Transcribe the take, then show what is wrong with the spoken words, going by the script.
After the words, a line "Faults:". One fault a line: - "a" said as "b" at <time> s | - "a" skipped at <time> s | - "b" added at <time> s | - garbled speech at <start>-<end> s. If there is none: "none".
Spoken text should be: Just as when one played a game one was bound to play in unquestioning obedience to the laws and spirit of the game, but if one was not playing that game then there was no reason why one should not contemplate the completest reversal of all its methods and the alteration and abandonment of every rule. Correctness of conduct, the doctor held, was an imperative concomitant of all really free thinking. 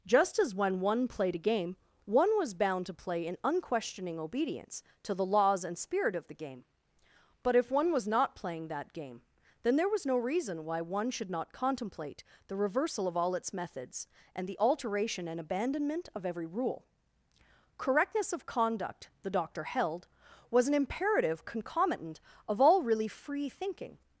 Just as when one played a game one was bound to play in unquestioning obedience to the laws and spirit of the game, but if one was not playing that game then there was no reason why one should not contemplate the reversal of all its methods and the alteration and abandonment of every rule. Correctness of conduct, the doctor held, was an imperative concomitant of all really free thinking.
Faults:
- "completest" skipped at 12.6 s